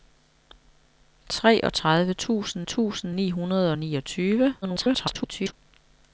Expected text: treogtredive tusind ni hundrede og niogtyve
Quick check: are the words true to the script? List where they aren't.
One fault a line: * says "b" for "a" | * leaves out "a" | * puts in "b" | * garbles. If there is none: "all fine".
* puts in "tusind"
* garbles